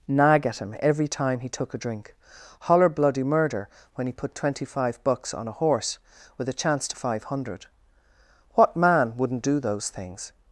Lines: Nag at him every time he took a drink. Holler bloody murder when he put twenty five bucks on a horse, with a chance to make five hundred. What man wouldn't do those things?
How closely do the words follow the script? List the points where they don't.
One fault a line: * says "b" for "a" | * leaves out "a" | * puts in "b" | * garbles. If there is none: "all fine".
* leaves out "make"